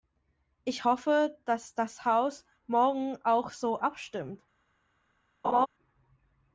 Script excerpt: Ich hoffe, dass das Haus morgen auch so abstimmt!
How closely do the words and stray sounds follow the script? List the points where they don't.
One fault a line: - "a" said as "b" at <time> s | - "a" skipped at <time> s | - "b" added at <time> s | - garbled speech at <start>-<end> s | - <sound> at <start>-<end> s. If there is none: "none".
- laugh at 5.4-5.7 s